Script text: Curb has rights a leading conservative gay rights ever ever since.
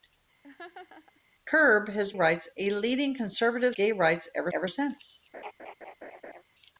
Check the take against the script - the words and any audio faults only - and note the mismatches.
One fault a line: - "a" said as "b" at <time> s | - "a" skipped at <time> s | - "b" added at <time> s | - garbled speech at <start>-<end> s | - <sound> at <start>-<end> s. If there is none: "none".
- laugh at 0.4-1.2 s
- laugh at 5.3-6.4 s